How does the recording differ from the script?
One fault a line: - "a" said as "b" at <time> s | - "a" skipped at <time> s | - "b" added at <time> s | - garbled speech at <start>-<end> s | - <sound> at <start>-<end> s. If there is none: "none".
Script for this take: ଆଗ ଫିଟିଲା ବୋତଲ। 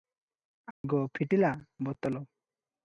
- dropout at 0.7-0.8 s